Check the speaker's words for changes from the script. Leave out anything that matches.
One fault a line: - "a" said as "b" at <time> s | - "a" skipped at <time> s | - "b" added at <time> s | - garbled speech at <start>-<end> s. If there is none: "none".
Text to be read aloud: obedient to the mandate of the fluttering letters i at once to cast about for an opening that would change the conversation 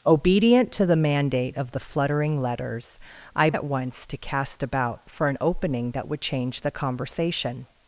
none